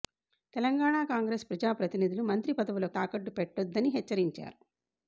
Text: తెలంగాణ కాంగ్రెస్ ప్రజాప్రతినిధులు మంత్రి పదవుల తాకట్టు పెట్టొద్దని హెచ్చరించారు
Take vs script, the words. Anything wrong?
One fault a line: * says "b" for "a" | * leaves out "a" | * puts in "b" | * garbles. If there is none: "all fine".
all fine